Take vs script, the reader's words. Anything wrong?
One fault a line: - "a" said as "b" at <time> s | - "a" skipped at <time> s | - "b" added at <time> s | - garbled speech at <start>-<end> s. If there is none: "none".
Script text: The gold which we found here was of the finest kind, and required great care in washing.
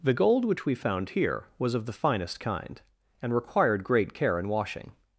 none